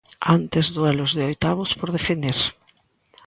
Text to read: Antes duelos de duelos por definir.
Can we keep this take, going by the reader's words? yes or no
no